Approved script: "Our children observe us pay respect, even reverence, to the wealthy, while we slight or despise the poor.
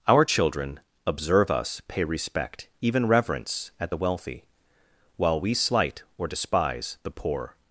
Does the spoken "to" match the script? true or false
false